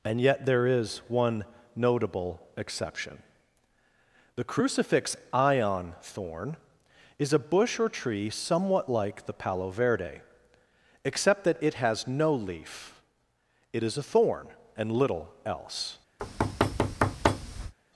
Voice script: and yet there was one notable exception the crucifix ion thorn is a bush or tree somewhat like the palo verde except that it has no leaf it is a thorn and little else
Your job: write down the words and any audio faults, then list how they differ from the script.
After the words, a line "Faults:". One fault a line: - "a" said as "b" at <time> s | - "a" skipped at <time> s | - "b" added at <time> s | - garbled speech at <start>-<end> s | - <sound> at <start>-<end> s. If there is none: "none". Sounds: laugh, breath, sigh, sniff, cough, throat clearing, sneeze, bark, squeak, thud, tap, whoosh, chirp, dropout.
and yet there is one notable exception the crucifix ion thorn is a bush or tree somewhat like the palo verde except that it has no leaf it is a thorn and little else
Faults:
- "was" said as "is" at 0.7 s
- thud at 16.2-17.7 s